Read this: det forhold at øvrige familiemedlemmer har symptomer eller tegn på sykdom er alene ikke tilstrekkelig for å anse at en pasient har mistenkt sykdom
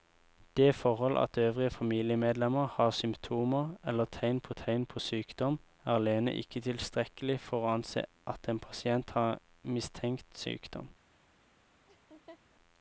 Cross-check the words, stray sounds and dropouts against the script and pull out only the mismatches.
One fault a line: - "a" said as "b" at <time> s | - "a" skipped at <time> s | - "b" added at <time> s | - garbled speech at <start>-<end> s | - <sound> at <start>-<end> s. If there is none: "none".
- "tegn på" added at 4.5 s
- laugh at 11.9-12.4 s